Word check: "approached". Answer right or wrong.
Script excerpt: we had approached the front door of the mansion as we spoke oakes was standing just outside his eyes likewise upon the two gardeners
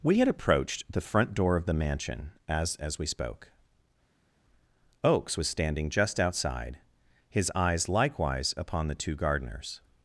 right